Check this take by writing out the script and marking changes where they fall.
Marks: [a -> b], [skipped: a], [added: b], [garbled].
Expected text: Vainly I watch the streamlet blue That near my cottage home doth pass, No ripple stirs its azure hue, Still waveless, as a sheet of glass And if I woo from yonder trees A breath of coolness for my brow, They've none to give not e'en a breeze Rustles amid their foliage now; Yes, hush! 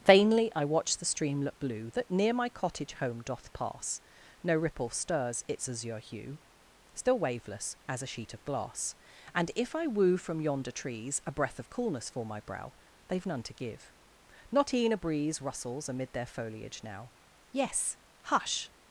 Vainly I watch the streamlet blue That near my cottage home doth pass, No ripple stirs its azure hue, Still waveless, as a sheet of glass And if I woo from yonder trees A breath of coolness for my brow, They've none to give not e'en a breeze Rustles amid their foliage now; Yes, hush!